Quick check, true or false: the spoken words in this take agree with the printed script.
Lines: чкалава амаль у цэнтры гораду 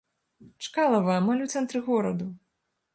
true